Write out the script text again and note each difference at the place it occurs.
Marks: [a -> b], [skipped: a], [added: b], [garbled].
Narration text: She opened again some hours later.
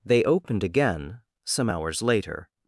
[She -> They] opened again some hours later.